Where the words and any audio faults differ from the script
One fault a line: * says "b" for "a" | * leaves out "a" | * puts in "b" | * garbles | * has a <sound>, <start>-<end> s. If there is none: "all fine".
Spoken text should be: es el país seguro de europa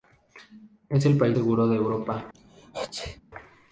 * has a sneeze, 2.3-3.2 s